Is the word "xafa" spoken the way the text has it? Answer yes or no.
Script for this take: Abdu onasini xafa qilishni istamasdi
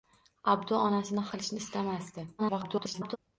no